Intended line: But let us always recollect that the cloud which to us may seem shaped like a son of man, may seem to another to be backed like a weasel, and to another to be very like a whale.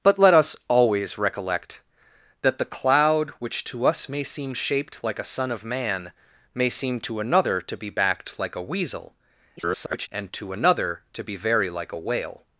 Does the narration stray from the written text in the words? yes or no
yes